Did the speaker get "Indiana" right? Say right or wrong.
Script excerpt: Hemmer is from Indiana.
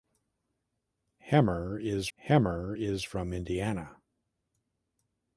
right